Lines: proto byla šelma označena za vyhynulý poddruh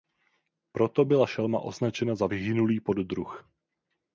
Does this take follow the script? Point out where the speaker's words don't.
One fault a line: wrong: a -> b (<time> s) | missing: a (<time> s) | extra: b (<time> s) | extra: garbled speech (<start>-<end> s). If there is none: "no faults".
no faults